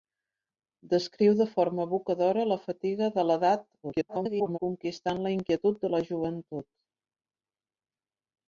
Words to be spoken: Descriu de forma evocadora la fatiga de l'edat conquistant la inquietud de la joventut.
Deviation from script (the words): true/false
true